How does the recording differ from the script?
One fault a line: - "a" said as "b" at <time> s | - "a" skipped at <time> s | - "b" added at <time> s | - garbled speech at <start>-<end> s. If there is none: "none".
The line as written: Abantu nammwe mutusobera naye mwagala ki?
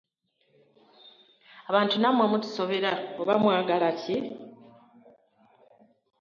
- "naye" said as "oba" at 3.2 s